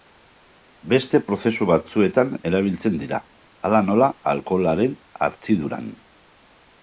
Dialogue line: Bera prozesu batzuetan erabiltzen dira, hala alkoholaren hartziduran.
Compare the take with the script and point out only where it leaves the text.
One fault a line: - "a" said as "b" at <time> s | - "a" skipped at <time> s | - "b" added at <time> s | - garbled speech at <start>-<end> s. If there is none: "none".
- "Bera" said as "Beste" at 0.9 s
- "nola" added at 3.9 s